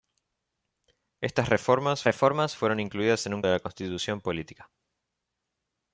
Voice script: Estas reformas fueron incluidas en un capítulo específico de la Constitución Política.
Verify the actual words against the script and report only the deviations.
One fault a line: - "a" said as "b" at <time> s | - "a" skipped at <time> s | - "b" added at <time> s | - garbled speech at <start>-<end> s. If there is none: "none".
- "reformas" added at 2.0 s
- "capítulo específico" skipped at 3.4 s